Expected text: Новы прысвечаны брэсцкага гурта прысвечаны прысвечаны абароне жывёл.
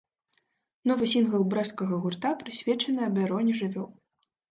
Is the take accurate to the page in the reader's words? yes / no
no